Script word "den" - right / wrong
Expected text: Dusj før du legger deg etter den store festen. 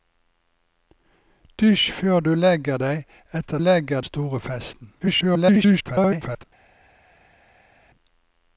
wrong